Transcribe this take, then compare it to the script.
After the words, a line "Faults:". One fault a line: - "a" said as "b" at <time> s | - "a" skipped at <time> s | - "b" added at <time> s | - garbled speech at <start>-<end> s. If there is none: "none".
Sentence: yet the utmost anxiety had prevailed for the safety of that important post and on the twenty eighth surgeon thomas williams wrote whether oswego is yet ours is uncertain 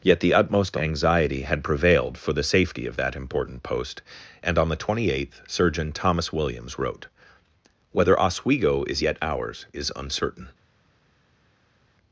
yet the utmost anxiety had prevailed for the safety of that important post and on the twenty eighth surgeon thomas williams wrote whether oswego is yet ours is uncertain
Faults:
none